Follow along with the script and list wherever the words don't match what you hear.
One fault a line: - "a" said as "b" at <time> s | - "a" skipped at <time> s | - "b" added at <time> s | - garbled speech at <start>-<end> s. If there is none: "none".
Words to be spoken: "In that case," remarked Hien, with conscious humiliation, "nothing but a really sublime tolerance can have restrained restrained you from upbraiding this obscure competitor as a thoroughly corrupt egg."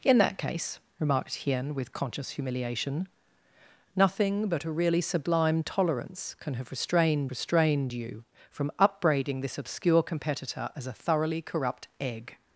none